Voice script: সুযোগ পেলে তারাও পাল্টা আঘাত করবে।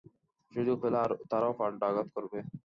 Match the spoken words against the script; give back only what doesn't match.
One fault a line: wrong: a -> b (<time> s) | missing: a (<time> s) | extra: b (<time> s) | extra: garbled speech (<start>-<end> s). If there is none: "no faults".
no faults